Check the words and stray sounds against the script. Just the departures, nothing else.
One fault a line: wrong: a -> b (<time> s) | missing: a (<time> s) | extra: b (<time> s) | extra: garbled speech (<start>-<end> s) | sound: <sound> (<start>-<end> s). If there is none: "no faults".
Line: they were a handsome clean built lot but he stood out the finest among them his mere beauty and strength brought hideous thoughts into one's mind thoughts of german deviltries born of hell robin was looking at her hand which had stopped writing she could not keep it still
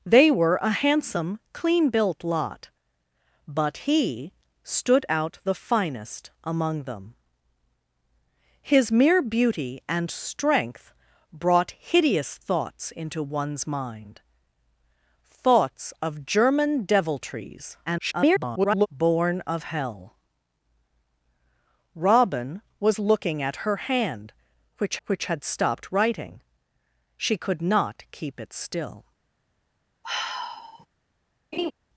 extra: garbled speech (17.9-18.9 s)
extra: which (25.1 s)
sound: sigh (30.0-30.9 s)
sound: laugh (31.5-31.7 s)